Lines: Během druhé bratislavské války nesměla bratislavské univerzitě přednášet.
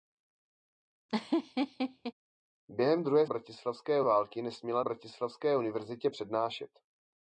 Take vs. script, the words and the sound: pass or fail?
fail